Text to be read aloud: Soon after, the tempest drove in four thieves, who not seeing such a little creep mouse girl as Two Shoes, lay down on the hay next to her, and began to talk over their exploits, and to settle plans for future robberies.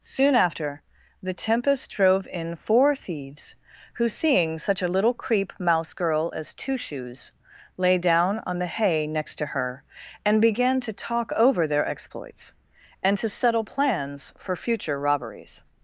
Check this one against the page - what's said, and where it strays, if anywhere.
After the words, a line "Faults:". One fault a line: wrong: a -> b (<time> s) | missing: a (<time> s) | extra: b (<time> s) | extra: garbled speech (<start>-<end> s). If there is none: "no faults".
Soon after, the tempest drove in four thieves, who seeing such a little creep mouse girl as Two Shoes, lay down on the hay next to her, and began to talk over their exploits, and to settle plans for future robberies.
Faults:
missing: not (4.1 s)